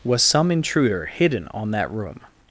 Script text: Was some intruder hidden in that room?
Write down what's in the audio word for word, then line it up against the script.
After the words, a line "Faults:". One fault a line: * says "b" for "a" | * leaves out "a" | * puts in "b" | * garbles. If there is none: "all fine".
Was some intruder hidden on that room?
Faults:
* says "on" for "in"